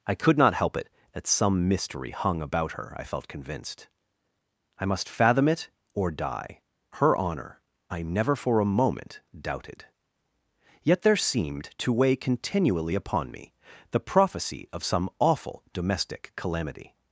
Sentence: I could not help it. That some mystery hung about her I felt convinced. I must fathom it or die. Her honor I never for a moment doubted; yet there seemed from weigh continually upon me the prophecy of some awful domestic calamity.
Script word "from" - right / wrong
wrong